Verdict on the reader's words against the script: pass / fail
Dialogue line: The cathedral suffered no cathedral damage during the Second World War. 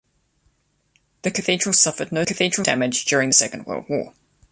pass